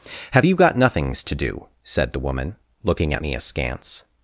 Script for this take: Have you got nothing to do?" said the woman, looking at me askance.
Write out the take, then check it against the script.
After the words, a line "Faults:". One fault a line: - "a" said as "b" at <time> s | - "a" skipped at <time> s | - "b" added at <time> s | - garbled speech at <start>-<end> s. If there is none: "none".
Have you got nothings to do?" said the woman, looking at me askance.
Faults:
- "nothing" said as "nothings" at 0.8 s